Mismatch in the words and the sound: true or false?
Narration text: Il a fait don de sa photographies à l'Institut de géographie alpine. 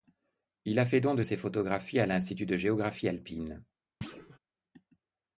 true